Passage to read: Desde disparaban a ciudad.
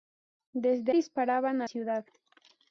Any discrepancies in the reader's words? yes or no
no